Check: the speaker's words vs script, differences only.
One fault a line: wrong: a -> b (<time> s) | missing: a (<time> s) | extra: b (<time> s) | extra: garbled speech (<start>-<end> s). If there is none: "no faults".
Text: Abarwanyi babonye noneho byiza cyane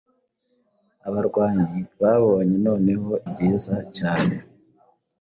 no faults